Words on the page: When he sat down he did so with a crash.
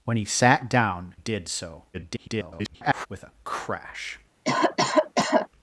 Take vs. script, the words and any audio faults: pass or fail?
fail